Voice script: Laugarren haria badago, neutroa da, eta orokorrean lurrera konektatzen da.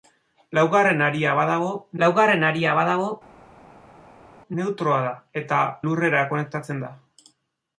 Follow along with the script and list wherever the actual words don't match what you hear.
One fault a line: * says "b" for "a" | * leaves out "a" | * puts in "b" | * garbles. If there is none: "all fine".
* puts in "laugarren haria badago"
* leaves out "orokorrean"